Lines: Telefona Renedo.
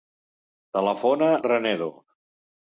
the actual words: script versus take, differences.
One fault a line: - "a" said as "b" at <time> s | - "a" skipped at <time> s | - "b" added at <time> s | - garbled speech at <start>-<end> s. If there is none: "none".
none